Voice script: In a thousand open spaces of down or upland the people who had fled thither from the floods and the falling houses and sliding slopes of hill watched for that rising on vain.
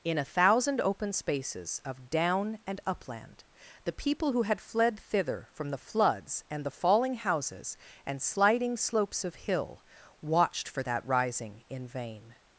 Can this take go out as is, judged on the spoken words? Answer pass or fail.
fail